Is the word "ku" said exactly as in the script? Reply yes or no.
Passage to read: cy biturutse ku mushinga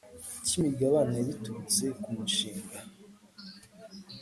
yes